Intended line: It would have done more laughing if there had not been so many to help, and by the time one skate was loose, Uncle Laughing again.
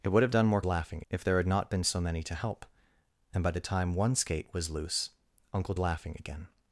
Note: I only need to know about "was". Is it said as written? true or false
true